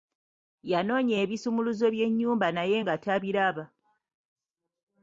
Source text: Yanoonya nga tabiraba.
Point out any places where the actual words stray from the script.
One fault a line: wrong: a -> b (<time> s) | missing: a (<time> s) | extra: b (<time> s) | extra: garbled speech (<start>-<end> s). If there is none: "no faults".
extra: ebisumuluzo by'ennyumba naye (1.2 s)